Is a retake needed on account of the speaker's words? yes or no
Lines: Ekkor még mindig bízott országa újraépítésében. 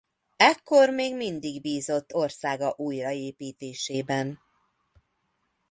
no